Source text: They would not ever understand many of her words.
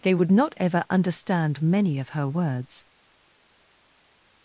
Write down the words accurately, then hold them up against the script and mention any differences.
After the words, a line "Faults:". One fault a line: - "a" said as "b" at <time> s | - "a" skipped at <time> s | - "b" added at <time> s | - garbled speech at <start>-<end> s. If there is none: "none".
They would not ever understand many of her words.
Faults:
none